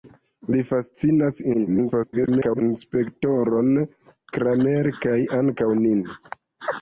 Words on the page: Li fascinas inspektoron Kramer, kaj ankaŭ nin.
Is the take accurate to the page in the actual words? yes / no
no